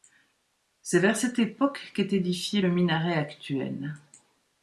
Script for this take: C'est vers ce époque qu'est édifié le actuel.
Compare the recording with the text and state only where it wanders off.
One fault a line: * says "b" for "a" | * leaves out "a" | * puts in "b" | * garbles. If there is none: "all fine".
* says "cette" for "ce"
* puts in "minaret"